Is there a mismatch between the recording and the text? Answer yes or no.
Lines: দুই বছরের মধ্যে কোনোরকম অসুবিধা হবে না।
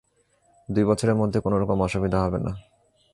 no